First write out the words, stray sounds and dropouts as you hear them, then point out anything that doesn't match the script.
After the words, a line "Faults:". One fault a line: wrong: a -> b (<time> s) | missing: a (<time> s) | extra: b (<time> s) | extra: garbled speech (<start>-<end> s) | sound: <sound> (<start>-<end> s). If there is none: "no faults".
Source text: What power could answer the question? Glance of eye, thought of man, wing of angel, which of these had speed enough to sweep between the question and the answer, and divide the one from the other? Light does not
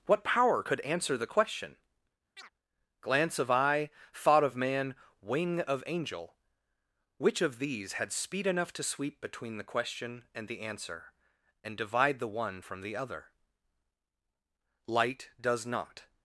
What power could answer the question? Glance of eye, thought of man, wing of angel, which of these had speed enough to sweep between the question and the answer, and divide the one from the other? Light does not
Faults:
sound: chirp (2.4-2.5 s)